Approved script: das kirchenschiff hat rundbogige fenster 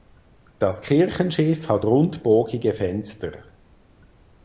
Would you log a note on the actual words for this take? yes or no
no